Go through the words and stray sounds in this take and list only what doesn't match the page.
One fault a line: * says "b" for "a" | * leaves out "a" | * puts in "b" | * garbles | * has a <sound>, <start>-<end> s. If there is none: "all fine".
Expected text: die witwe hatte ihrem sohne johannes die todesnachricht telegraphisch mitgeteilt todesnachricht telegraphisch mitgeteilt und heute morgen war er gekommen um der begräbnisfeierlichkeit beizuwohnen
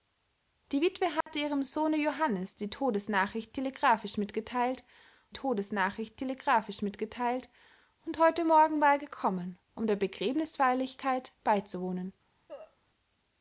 * has a dropout, 1.2-1.3 s
* has a cough, 12.5-12.8 s